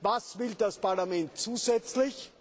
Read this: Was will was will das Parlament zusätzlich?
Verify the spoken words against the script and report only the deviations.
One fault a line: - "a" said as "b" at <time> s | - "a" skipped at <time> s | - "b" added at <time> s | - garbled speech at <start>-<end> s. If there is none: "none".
- "was will" skipped at 0.6 s